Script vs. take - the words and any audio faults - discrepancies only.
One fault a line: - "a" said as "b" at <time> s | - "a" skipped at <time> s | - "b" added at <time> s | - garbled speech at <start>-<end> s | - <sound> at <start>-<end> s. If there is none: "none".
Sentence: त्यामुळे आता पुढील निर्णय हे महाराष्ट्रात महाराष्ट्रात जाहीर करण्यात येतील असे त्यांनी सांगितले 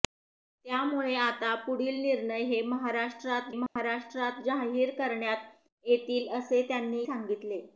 - dropout at 3.7-3.8 s